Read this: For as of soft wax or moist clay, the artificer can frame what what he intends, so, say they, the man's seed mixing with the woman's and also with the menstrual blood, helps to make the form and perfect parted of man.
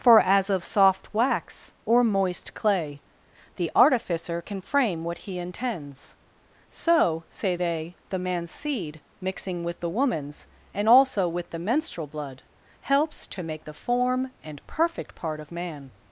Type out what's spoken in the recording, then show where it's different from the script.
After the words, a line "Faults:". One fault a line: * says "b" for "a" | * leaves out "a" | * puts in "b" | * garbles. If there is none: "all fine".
For as of soft wax or moist clay, the artificer can frame what he intends, so, say they, the man's seed mixing with the woman's and also with the menstrual blood, helps to make the form and perfect part of man.
Faults:
* leaves out "what"
* says "part" for "parted"